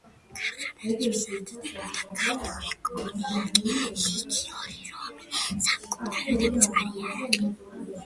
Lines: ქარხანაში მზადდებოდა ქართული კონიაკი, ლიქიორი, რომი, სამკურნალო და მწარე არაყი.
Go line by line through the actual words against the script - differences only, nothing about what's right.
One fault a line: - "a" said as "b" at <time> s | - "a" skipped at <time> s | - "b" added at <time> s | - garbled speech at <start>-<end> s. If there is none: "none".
none